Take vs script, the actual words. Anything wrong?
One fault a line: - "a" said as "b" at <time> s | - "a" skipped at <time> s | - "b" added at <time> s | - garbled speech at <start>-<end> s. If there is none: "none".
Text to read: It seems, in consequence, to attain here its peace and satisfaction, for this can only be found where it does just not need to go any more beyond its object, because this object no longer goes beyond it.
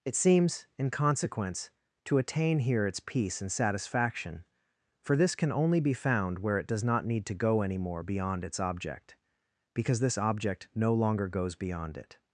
- "just" skipped at 6.8 s